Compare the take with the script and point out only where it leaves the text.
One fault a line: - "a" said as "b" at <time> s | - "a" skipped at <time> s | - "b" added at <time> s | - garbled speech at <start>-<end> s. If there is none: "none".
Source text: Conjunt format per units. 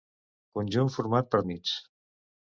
none